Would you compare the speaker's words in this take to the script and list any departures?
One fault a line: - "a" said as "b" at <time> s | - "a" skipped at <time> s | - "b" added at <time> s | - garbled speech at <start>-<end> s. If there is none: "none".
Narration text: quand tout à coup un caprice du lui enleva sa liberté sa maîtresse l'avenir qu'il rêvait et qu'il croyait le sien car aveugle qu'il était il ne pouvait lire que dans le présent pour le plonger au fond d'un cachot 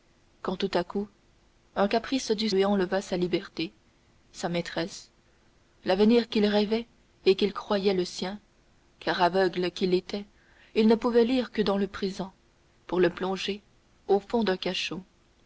none